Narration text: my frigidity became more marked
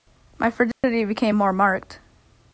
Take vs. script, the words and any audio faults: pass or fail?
fail